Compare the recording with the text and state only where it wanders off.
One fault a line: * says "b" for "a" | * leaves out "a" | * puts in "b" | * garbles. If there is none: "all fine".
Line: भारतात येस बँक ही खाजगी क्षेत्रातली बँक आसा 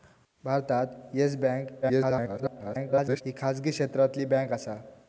* garbles